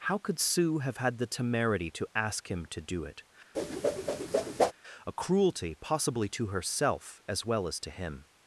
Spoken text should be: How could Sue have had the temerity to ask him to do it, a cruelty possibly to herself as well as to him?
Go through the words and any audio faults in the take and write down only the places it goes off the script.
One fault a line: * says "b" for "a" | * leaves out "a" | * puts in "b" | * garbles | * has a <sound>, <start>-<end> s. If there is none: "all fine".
* has a whoosh, 3.5-4.7 s